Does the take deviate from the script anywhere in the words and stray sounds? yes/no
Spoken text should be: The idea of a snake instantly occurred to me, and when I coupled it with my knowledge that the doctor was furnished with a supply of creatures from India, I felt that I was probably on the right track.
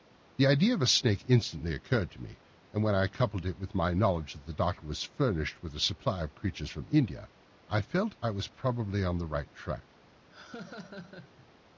yes